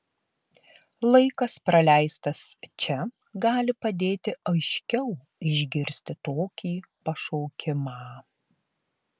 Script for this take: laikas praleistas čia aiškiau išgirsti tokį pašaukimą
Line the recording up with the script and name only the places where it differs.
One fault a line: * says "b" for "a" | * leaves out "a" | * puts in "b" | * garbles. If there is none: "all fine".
* puts in "gali padėti"